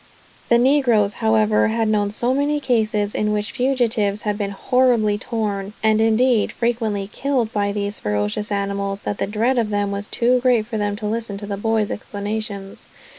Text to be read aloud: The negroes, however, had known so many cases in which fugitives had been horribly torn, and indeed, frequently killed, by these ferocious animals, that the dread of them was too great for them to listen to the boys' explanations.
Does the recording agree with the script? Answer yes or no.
yes